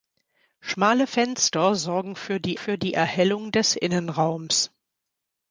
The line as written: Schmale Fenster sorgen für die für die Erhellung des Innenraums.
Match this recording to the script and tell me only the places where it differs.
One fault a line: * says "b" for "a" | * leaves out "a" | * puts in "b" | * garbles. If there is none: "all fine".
all fine